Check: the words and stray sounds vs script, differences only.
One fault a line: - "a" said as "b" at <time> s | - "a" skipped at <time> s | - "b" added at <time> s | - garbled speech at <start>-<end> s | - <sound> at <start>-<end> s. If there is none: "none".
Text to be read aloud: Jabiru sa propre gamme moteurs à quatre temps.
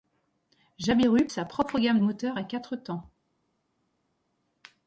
none